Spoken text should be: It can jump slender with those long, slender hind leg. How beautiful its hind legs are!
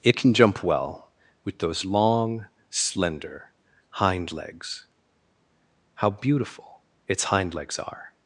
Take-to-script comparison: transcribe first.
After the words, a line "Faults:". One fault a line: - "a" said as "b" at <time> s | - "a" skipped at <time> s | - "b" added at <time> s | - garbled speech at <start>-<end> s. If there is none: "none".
It can jump well with those long, slender hind legs. How beautiful its hind legs are!
Faults:
- "slender" said as "well" at 0.6 s
- "leg" said as "legs" at 4.3 s